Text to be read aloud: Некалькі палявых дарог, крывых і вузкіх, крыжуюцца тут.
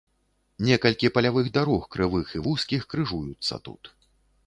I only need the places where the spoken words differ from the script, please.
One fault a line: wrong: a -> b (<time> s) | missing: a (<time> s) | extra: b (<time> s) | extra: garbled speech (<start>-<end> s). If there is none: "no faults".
no faults